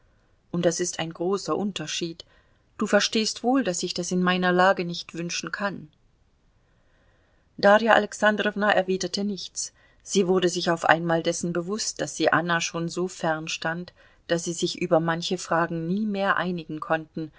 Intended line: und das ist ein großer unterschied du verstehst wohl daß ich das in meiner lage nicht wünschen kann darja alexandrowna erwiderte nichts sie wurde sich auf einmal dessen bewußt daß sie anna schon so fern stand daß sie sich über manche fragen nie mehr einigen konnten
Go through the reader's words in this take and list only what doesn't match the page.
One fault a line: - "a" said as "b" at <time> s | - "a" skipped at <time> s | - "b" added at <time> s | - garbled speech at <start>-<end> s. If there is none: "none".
none